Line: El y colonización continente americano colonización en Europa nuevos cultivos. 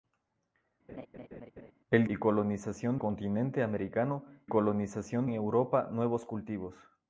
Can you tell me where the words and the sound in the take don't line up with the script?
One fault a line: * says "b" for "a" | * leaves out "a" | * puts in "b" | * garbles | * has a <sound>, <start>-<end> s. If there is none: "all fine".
* has a laugh, 0.9-1.7 s